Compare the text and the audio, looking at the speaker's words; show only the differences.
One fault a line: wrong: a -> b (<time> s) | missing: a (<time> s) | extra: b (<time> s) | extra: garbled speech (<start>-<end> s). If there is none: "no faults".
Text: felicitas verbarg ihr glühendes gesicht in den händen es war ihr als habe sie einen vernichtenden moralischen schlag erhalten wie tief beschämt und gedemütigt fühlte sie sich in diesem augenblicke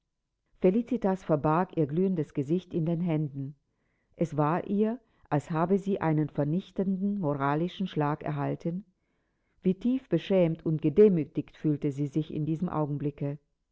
no faults